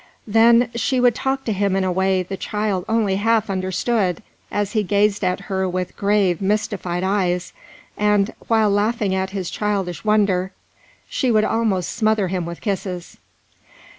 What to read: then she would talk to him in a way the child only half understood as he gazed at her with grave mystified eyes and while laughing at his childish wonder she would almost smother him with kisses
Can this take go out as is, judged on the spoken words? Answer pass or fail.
pass